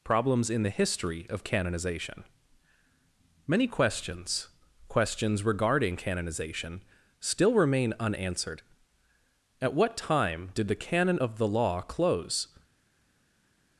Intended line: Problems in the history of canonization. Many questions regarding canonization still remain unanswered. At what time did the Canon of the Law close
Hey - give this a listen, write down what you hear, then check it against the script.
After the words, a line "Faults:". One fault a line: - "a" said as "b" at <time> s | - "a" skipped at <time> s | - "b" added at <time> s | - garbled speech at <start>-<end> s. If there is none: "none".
Problems in the history of canonization. Many questions questions regarding canonization still remain unanswered. At what time did the Canon of the Law close
Faults:
- "questions" added at 4.9 s